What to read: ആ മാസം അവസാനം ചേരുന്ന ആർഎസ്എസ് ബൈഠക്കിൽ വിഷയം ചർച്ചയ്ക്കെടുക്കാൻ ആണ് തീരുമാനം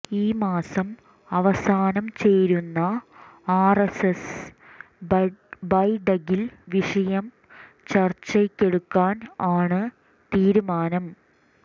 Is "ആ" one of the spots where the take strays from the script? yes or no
yes